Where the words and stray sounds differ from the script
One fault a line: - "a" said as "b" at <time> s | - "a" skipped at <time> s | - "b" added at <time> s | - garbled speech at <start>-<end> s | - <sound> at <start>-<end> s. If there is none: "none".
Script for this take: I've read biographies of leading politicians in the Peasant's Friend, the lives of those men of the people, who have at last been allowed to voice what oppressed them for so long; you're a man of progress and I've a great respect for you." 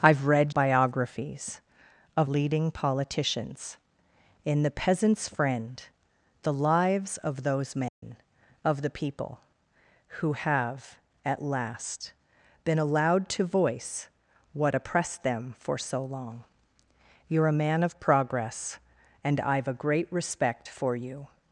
- dropout at 7.9-8.0 s